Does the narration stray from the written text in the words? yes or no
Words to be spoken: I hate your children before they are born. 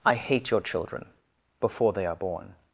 no